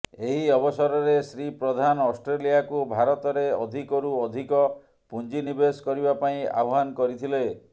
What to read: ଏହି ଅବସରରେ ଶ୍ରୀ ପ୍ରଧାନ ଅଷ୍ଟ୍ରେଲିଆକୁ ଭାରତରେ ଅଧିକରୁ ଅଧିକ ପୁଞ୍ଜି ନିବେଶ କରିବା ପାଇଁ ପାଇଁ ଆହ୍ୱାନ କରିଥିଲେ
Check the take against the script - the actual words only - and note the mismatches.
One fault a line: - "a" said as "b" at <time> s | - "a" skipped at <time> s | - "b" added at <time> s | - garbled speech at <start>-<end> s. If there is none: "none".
- "ପାଇଁ" skipped at 6.4 s